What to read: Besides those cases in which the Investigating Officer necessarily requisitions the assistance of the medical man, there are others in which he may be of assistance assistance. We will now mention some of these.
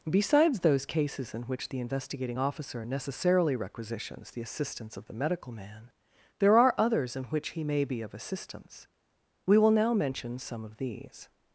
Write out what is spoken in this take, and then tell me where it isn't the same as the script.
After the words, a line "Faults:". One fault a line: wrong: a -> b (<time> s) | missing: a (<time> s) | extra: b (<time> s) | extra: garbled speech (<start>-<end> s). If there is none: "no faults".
Besides those cases in which the Investigating Officer necessarily requisitions the assistance of the medical man, there are others in which he may be of assistance. We will now mention some of these.
Faults:
missing: assistance (8.9 s)